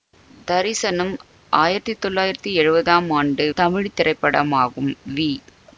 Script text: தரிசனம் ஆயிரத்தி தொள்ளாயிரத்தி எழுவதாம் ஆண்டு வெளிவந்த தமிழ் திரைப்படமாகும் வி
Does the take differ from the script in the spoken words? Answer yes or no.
yes